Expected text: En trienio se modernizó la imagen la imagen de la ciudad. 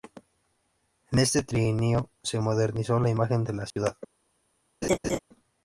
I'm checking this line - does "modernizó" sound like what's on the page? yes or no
yes